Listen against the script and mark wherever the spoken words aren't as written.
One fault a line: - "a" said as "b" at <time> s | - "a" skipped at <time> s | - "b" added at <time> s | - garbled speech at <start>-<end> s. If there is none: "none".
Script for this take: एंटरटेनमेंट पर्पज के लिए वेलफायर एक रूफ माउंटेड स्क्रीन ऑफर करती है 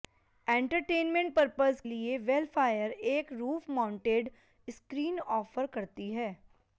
- "के" skipped at 1.8 s